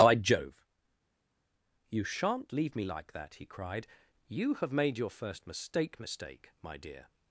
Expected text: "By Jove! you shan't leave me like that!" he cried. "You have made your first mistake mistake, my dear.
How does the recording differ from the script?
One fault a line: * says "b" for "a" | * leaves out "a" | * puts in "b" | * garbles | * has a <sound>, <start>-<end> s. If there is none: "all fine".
all fine